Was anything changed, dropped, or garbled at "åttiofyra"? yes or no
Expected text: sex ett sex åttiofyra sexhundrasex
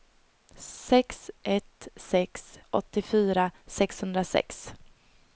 no